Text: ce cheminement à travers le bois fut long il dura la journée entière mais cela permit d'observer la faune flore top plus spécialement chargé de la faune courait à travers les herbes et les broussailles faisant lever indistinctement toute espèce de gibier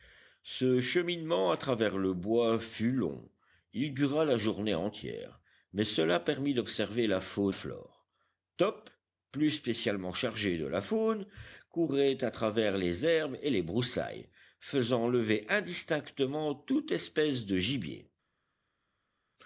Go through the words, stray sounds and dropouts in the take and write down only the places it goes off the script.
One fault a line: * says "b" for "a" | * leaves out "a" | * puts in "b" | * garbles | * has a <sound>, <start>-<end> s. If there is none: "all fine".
all fine